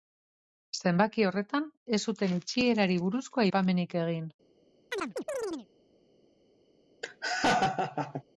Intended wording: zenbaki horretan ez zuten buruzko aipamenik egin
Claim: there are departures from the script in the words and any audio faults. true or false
true